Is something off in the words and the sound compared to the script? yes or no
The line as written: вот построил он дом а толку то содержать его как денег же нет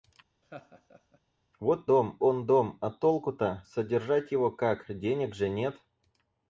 yes